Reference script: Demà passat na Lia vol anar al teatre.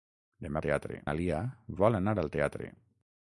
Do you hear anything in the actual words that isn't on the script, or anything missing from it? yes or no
yes